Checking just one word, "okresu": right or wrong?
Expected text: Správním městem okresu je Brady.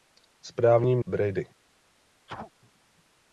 wrong